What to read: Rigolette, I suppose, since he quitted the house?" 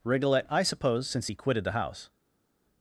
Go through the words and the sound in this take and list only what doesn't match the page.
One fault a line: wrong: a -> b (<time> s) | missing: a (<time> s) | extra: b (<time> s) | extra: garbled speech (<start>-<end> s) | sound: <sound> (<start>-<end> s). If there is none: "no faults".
no faults